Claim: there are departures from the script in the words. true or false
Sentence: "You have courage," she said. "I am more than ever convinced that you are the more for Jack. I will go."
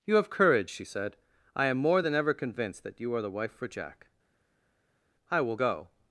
true